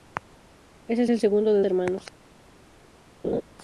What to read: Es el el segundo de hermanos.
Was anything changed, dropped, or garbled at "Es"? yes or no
no